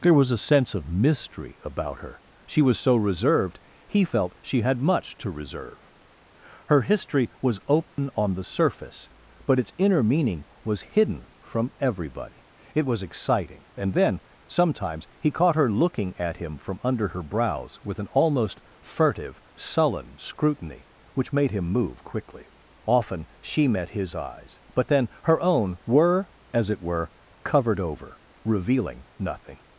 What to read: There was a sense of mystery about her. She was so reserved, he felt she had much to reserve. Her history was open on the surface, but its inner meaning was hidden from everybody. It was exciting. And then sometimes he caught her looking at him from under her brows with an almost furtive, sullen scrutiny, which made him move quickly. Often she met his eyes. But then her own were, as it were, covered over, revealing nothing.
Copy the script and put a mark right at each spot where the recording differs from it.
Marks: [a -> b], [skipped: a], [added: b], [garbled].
There was a sense of mystery about her. She was so reserved, he felt she had much to reserve. Her history was open on the surface, but its inner meaning was hidden from everybody. It was exciting. And then sometimes he caught her looking at him from under her brows with an almost furtive, sullen scrutiny, which made him move quickly. Often she met his eyes. But then her own were, as it were, covered over, revealing nothing.